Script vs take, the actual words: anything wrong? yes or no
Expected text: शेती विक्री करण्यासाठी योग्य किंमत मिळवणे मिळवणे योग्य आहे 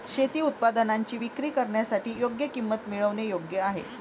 yes